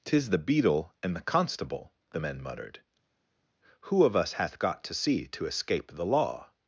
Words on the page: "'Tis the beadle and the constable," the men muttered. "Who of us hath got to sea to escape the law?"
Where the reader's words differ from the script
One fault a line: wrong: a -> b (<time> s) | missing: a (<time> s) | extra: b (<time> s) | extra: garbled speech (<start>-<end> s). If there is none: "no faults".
no faults